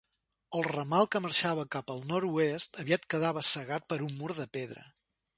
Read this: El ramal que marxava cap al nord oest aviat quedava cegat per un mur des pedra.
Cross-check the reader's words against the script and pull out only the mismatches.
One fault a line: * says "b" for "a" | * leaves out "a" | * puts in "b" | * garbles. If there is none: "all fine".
* says "de" for "des"